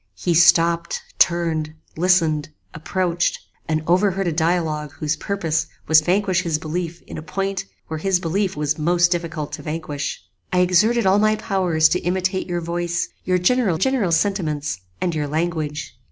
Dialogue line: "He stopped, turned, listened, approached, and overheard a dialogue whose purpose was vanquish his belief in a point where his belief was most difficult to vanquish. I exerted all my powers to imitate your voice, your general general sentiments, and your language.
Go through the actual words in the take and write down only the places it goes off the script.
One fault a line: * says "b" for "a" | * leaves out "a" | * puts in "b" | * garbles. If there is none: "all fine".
all fine